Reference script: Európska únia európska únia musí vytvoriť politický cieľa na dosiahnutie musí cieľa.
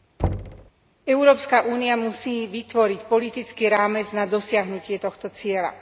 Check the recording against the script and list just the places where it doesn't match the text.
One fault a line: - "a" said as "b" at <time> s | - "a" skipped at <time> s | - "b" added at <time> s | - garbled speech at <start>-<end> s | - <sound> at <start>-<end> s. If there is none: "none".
- thud at 0.2-0.7 s
- "európska únia" skipped at 1.9 s
- "cieľa" said as "rámec" at 3.7 s
- "musí" said as "tohto" at 5.0 s